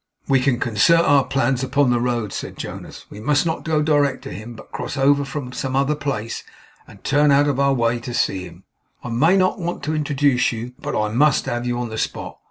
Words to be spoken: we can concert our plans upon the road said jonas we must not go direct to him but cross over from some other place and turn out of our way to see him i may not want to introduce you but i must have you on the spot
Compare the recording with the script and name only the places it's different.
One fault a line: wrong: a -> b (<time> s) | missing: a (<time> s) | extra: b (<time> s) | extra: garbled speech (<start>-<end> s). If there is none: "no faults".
no faults